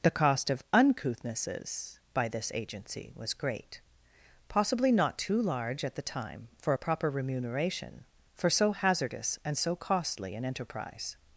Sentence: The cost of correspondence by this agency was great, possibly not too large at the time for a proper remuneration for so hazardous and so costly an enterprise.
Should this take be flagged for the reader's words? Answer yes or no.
yes